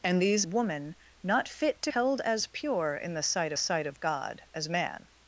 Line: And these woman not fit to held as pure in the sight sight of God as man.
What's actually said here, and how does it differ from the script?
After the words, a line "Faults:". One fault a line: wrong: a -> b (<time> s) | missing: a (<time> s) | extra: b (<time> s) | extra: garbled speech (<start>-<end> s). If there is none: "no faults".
And these woman not fit to held as pure in the sight sight of God as man.
Faults:
no faults